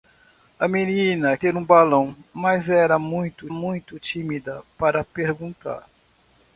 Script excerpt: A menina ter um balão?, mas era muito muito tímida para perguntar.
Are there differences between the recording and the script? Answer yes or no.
no